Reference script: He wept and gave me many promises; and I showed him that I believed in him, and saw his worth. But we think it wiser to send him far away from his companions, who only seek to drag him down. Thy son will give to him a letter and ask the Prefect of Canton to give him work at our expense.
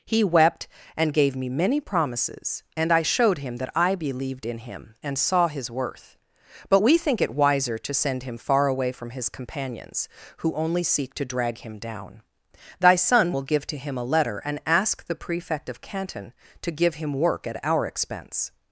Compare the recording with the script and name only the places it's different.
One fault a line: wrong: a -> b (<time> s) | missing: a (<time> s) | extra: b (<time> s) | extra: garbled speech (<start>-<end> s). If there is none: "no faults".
no faults